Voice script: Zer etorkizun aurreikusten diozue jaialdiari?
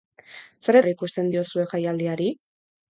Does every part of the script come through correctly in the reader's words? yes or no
no